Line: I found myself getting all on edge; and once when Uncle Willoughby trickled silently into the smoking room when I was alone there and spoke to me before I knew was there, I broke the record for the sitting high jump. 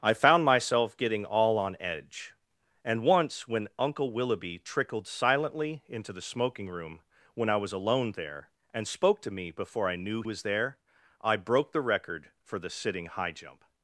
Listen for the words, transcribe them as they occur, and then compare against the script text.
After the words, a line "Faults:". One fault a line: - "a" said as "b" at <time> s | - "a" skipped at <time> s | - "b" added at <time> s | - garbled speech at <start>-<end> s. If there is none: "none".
I found myself getting all on edge; and once when Uncle Willoughby trickled silently into the smoking room when I was alone there and spoke to me before I knew was there, I broke the record for the sitting high jump.
Faults:
none